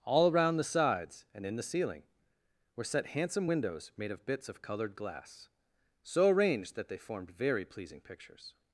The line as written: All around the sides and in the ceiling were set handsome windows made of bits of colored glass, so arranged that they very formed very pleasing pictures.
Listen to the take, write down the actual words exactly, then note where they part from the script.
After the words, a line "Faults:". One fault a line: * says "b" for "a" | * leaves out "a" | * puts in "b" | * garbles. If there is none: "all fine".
All around the sides and in the ceiling were set handsome windows made of bits of colored glass, so arranged that they formed very pleasing pictures.
Faults:
* leaves out "very"